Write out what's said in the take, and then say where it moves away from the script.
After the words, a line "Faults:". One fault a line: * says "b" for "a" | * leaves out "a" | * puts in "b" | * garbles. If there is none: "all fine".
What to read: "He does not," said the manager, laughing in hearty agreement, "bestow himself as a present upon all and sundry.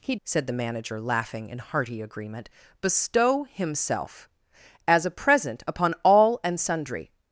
"He," said the manager, laughing in hearty agreement, "bestow himself as a present upon all and sundry.
Faults:
* leaves out "does not"